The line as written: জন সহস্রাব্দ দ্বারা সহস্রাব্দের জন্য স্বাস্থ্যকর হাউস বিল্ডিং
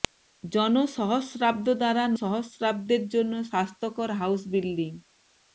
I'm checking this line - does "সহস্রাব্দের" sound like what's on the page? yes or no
yes